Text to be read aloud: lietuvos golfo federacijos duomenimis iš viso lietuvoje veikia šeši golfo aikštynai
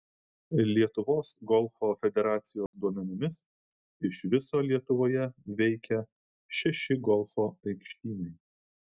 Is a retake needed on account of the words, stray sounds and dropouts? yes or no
yes